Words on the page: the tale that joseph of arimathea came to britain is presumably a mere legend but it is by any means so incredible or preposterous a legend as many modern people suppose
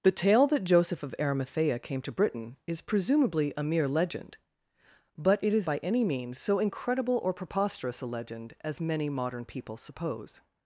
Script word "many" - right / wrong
right